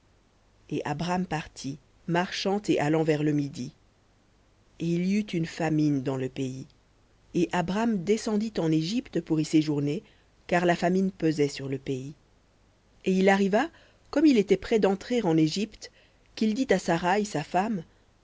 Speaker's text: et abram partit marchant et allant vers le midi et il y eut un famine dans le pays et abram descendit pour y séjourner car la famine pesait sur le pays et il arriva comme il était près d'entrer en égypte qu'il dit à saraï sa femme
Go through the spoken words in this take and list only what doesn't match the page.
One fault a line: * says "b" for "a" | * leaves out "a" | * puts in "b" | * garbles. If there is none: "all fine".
* says "une" for "un"
* puts in "en égypte"